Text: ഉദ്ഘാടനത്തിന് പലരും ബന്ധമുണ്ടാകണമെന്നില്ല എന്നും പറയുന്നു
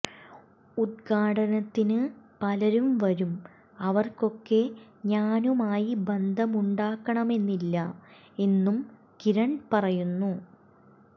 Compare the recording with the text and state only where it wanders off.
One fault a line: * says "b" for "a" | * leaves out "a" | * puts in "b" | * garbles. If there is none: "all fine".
* puts in "വരും അവർക്കൊക്കെ ഞാനുമായി"
* puts in "കിരൺ"